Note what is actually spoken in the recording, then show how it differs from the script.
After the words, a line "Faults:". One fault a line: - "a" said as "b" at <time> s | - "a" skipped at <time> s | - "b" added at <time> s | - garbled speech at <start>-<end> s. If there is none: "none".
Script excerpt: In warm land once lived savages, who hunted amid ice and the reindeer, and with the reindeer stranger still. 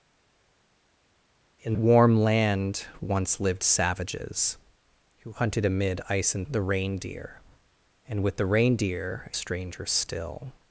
In warm land once lived savages, who hunted amid ice and the reindeer, and with the reindeer stranger still.
Faults:
none